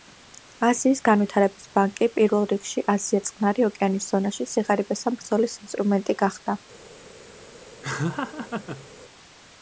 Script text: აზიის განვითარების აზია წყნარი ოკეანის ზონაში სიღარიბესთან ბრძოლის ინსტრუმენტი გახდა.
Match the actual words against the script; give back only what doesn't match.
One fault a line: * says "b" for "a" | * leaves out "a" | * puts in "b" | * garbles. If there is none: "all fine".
* puts in "ბანკი პირველ რიგში"